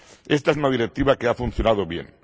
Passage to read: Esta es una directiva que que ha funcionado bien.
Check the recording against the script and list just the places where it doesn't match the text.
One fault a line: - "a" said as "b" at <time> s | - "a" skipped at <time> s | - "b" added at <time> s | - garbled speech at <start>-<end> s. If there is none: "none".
- "que" skipped at 1.3 s